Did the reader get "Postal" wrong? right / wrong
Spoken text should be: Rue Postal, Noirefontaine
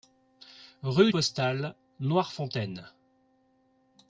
right